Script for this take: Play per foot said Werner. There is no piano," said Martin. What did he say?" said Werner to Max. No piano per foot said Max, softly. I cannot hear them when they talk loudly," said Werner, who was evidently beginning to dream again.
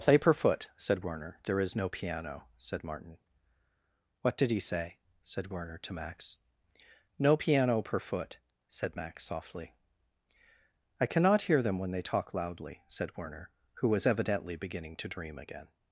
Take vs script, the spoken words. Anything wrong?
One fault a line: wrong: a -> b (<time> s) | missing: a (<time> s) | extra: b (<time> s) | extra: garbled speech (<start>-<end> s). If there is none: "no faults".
no faults